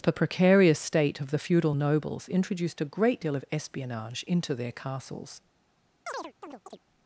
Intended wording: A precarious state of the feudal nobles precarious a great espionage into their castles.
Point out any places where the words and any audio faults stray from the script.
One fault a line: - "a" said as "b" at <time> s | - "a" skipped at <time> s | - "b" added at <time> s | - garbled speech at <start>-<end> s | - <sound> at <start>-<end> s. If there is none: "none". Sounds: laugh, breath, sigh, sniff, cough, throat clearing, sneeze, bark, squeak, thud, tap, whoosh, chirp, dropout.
- "A" said as "The" at 0.0 s
- "precarious" said as "introduced" at 2.3 s
- "deal of" added at 3.2 s
- chirp at 6.1-6.8 s